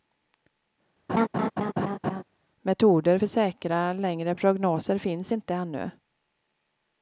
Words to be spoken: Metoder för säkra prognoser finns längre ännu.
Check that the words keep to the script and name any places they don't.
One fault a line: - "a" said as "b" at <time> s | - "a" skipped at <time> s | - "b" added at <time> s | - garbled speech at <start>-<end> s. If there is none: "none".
- "längre" added at 3.9 s
- "längre" said as "inte" at 5.3 s